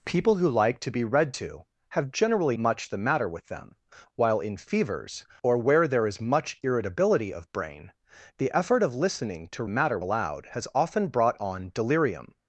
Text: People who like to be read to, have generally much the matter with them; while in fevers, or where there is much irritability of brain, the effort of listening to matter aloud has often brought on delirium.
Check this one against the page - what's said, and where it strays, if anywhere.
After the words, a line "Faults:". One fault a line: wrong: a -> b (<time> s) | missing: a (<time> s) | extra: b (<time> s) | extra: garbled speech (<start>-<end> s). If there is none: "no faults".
People who like to be read to, have generally much the matter with them; while in fevers, or where there is much irritability of brain, the effort of listening to matter aloud has often brought on delirium.
Faults:
no faults